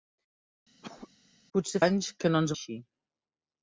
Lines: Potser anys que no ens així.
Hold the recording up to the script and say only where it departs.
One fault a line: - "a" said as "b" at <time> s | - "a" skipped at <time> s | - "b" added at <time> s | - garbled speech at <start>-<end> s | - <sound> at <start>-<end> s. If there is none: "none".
- cough at 0.8-1.1 s